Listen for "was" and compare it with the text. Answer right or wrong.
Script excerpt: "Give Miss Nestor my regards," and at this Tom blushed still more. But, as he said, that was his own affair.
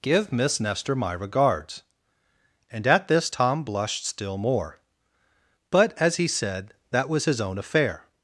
right